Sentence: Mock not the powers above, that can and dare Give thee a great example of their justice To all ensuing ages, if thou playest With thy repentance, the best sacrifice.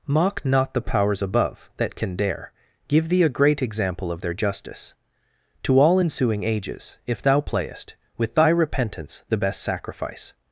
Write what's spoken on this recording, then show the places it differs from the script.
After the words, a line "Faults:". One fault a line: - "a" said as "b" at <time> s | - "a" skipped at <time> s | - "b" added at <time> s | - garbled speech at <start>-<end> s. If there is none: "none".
Mock not the powers above, that can dare Give thee a great example of their justice To all ensuing ages, if thou playest With thy repentance, the best sacrifice.
Faults:
- "and" skipped at 2.1 s